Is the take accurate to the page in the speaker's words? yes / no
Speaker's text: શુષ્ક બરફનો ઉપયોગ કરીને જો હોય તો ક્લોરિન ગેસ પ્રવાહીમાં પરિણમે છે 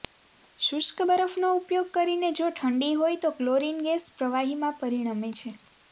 no